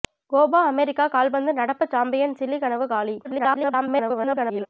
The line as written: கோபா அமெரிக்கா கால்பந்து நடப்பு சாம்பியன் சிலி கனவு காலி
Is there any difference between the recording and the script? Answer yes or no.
yes